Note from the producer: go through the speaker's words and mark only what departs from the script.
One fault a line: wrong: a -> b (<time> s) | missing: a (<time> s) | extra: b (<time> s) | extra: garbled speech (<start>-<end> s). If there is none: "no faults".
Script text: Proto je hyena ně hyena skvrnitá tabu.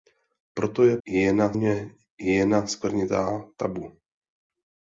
no faults